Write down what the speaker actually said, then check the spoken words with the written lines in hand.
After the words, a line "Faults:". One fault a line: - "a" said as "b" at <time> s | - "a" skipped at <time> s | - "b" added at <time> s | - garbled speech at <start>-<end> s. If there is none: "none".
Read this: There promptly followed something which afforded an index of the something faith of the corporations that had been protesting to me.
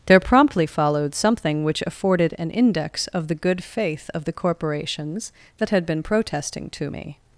There promptly followed something which afforded an index of the good faith of the corporations that had been protesting to me.
Faults:
- "something" said as "good" at 3.4 s